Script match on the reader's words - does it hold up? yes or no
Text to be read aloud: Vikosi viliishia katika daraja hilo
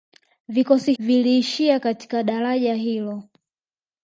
yes